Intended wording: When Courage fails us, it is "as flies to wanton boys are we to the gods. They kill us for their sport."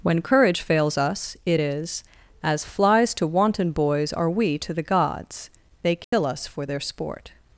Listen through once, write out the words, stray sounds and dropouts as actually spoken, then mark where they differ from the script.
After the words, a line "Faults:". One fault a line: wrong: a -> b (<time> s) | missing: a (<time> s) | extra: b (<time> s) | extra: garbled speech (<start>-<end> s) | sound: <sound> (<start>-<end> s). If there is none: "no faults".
When Courage fails us, it is "as flies to wanton boys are we to the gods. They kill us for their sport."
Faults:
sound: dropout (6.0-6.1 s)